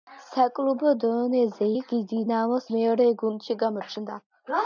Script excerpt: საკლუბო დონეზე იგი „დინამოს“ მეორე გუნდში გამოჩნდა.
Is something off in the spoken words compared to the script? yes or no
no